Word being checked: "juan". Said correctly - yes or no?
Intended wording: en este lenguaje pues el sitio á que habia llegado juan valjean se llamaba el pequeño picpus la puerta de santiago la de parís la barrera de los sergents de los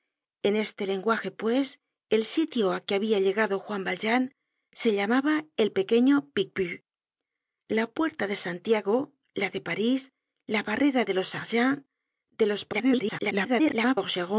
yes